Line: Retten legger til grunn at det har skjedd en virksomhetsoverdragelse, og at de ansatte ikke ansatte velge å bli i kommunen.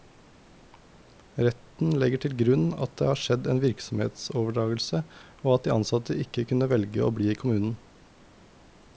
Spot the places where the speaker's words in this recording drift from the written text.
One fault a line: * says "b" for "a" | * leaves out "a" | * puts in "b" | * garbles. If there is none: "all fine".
* says "kunne" for "ansatte"